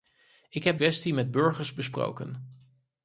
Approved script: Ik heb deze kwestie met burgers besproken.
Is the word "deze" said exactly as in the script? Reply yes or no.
no